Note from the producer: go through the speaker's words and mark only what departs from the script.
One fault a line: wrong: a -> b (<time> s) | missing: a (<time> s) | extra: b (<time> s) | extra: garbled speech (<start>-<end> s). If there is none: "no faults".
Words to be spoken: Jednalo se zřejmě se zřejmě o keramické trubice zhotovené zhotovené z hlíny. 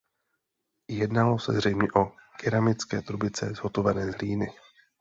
missing: se zřejmě (1.9 s)
missing: zhotovené (4.1 s)